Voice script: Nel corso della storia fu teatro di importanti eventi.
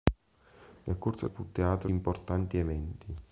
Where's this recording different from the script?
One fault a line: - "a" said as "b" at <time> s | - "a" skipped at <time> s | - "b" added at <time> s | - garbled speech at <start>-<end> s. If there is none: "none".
- "della storia" skipped at 1.3 s
- "di" skipped at 1.9 s